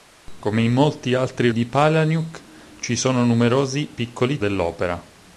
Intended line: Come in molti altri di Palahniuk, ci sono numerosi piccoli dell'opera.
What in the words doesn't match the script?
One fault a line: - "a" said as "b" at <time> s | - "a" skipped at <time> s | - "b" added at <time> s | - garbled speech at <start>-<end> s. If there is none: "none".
none